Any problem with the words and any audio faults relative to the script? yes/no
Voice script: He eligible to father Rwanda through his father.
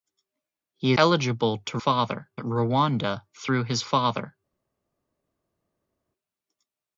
no